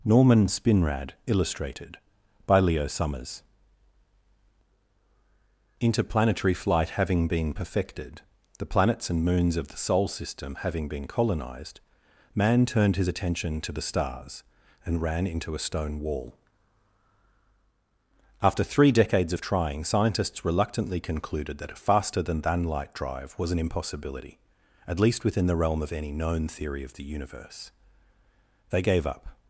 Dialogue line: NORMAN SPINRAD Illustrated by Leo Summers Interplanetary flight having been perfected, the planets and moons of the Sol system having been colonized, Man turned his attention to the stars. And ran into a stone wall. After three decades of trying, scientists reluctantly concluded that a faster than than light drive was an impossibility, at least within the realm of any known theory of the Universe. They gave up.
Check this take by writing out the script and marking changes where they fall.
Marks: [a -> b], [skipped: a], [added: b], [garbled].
NORMAN SPINRAD Illustrated by Leo Summers Interplanetary flight having been perfected, the planets and moons of the Sol system having been colonized, Man turned his attention to the stars. And ran into a stone wall. After three decades of trying, scientists reluctantly concluded that a faster than than light drive was an impossibility, at least within the realm of any known theory of the Universe. They gave up.